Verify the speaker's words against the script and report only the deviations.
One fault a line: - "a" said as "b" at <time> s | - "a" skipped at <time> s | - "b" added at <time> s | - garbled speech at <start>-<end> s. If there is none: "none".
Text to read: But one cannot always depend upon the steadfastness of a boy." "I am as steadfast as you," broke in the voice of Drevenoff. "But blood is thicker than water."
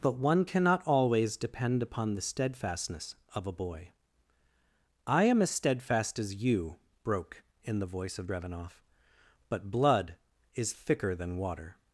none